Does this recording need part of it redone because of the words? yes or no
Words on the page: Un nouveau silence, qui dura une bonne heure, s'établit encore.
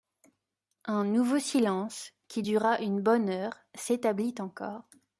no